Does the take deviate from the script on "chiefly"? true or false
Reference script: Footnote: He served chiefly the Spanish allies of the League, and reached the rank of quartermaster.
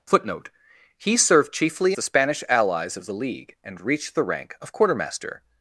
false